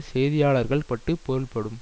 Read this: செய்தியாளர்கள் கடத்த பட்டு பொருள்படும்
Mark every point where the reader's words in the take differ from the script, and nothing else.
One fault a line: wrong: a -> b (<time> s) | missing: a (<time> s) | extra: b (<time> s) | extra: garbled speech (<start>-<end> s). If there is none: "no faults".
missing: கடத்த (0.8 s)